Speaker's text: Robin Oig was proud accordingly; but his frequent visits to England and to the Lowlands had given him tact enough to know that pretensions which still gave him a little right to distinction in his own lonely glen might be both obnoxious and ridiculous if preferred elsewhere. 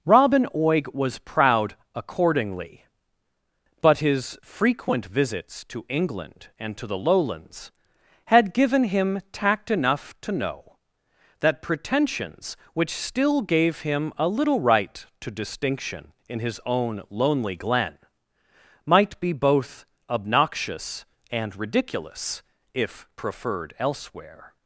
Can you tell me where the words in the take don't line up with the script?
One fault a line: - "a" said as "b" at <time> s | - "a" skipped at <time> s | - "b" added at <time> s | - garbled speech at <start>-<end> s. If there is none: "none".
none